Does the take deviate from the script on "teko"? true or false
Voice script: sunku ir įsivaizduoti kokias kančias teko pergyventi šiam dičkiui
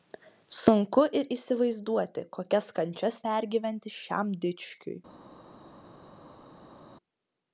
true